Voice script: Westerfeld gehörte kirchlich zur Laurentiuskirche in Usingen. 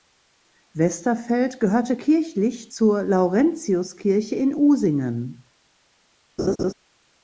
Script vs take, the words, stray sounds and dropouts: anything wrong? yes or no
yes